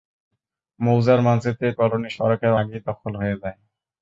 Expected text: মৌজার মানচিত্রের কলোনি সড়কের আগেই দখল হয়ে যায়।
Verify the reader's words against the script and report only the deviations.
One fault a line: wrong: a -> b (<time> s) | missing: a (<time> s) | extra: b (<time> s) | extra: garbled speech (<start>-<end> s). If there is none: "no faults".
no faults